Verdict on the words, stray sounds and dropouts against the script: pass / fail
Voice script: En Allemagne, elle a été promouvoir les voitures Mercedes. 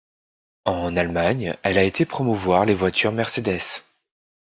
pass